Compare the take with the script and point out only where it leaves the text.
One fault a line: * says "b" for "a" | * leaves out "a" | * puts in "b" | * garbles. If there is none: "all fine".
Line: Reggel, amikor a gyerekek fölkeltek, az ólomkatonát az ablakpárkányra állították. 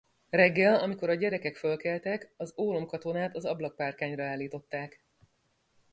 all fine